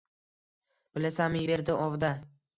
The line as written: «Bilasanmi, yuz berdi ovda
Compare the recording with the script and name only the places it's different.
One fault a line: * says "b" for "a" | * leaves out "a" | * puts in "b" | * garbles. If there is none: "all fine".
* leaves out "yuz"